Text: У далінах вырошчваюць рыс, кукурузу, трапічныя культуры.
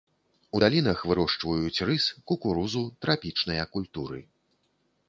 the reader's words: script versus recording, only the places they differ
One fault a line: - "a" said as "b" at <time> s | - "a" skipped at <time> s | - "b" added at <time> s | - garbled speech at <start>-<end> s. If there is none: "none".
none